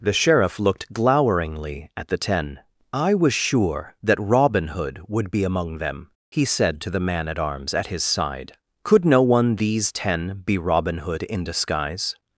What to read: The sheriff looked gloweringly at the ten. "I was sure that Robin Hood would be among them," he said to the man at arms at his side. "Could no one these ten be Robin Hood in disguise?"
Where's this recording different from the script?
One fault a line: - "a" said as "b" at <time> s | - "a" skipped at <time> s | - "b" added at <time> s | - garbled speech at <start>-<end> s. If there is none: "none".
none